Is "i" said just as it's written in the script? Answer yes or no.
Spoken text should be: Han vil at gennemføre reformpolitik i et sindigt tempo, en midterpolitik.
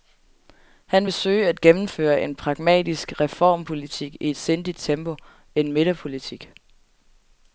yes